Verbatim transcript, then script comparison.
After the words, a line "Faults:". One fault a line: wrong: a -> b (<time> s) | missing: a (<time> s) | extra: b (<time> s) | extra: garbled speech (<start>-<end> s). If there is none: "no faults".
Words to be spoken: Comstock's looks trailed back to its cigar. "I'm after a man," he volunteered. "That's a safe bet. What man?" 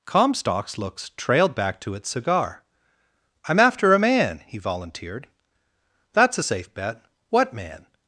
Comstock's looks trailed back to its cigar. "I'm after a man," he volunteered. "That's a safe bet. What man?"
Faults:
no faults